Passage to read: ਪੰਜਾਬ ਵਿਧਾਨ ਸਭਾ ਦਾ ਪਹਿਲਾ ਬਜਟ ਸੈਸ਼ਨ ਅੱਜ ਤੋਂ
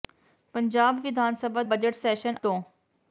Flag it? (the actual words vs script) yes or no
yes